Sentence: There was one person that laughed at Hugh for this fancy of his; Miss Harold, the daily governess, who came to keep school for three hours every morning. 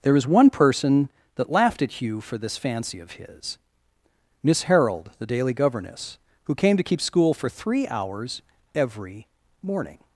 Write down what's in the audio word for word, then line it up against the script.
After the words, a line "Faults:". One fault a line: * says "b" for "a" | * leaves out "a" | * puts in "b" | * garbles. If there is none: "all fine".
There was one person that laughed at Hugh for this fancy of his; Miss Harold, the daily governess, who came to keep school for three hours every morning.
Faults:
all fine